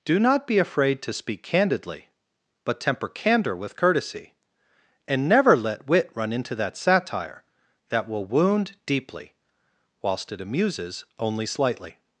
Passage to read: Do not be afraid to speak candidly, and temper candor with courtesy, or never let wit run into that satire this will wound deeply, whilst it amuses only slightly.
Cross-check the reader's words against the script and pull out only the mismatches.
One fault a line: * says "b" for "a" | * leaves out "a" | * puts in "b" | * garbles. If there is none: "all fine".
* says "but" for "and"
* says "and" for "or"
* says "that" for "this"